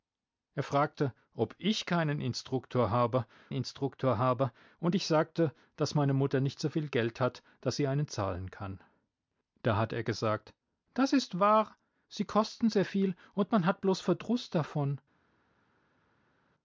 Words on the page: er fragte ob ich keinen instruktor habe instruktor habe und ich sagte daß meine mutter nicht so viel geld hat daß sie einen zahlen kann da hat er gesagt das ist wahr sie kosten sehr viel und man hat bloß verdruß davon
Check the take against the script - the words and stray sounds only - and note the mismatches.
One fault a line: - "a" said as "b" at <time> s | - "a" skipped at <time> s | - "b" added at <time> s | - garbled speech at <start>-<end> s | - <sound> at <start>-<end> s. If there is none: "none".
none